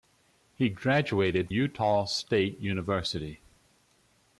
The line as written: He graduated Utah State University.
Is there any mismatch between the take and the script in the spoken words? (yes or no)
no